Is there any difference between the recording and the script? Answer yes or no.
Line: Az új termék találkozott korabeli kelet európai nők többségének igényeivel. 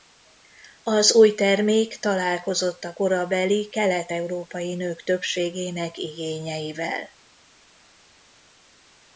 yes